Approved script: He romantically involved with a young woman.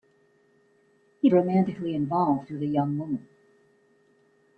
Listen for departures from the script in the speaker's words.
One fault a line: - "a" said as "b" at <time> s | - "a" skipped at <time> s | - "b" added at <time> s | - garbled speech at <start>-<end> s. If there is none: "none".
none